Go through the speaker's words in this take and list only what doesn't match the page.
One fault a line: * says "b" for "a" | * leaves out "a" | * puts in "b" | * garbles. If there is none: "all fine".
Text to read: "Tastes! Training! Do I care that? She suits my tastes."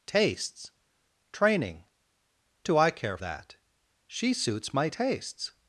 all fine